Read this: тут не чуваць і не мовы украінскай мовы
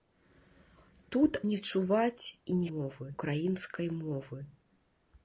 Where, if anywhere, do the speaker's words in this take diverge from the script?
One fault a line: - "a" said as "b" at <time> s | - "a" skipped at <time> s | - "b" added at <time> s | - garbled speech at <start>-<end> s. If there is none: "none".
none